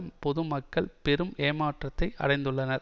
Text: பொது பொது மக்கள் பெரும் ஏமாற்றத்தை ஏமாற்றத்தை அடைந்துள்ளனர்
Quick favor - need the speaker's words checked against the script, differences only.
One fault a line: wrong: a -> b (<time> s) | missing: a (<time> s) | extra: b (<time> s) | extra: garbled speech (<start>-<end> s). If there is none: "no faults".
missing: பொது (0.4 s)
missing: ஏமாற்றத்தை (2.1 s)